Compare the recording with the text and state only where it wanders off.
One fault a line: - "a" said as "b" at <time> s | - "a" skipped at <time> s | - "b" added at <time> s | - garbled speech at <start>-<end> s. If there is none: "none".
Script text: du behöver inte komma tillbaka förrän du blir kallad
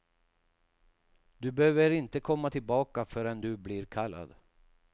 none